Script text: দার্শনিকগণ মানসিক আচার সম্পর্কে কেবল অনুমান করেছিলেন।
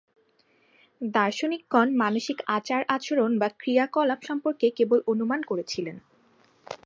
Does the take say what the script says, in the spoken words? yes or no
no